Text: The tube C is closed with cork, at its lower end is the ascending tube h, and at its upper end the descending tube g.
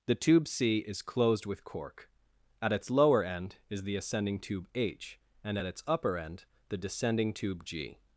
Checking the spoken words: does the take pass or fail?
pass